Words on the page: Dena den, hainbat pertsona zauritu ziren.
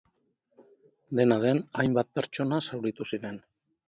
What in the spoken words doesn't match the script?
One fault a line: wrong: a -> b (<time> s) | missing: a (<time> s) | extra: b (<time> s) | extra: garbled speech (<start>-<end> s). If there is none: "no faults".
no faults